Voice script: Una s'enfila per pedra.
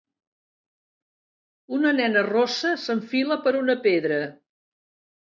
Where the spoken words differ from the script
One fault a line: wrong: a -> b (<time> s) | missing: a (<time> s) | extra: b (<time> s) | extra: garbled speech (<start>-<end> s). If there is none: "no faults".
extra: nena rossa (2.0 s)
extra: una (3.6 s)